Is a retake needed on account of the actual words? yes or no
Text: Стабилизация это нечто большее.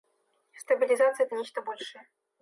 no